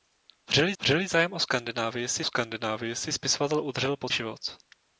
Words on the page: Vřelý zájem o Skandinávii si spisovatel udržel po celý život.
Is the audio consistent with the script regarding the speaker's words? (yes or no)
no